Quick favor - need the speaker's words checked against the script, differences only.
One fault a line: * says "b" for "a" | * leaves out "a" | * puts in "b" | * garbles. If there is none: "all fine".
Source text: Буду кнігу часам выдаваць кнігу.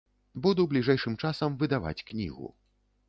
* says "бліжэйшым" for "кнігу"